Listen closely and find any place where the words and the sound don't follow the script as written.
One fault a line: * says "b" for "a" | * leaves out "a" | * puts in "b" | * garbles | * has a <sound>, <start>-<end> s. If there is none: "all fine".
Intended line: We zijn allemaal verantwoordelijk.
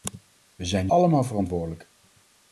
all fine